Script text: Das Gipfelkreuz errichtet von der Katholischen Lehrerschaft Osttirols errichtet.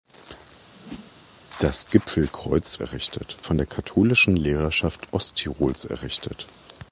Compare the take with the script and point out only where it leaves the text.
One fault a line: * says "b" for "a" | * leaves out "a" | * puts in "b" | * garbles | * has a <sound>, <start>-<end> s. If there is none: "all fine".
* has a whoosh, 0.8-1.1 s